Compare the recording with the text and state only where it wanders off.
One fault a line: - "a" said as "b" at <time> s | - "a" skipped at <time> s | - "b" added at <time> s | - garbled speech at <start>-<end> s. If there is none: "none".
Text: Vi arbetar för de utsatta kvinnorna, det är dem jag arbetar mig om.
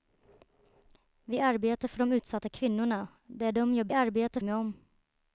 none